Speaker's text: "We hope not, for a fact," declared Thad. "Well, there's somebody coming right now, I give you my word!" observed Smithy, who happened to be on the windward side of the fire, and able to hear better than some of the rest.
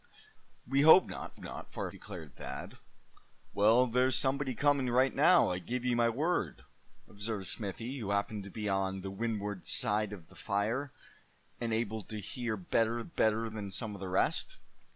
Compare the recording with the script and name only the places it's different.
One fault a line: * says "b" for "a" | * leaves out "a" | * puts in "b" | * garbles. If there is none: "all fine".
* puts in "not"
* leaves out "fact"
* puts in "better"